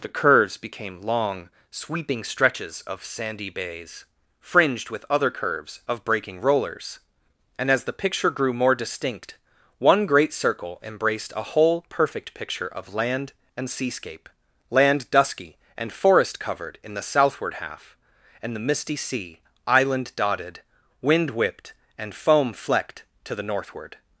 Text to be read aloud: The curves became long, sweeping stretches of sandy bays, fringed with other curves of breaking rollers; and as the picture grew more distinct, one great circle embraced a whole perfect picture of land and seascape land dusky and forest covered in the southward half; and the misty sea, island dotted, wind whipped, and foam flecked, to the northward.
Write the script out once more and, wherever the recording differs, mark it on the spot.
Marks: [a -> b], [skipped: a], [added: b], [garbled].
The curves became long, sweeping stretches of sandy bays, fringed with other curves of breaking rollers; and as the picture grew more distinct, one great circle embraced a whole perfect picture of land and seascape land dusky and forest covered in the southward half; and the misty sea, island dotted, wind whipped, and foam flecked, to the northward.